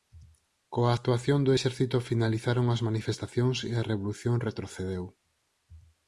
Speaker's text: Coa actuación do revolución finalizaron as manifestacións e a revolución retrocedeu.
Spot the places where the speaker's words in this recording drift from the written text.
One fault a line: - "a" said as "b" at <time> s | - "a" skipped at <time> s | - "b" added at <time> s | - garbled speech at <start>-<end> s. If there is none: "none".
- "revolución" said as "exército" at 1.5 s